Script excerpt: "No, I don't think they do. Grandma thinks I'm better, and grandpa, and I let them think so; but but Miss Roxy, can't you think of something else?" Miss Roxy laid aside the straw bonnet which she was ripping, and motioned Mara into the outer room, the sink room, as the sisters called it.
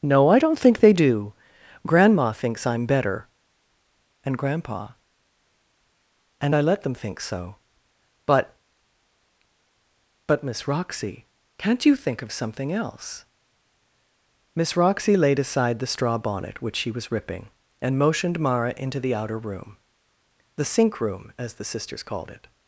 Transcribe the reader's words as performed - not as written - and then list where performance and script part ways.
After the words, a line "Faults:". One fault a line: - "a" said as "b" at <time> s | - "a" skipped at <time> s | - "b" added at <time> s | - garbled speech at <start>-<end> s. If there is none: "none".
"No, I don't think they do. Grandma thinks I'm better, and grandpa, and I let them think so; but but Miss Roxy, can't you think of something else?" Miss Roxy laid aside the straw bonnet which she was ripping, and motioned Mara into the outer room, the sink room, as the sisters called it.
Faults:
none